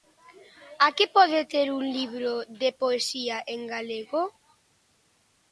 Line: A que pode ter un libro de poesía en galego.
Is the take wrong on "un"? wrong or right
right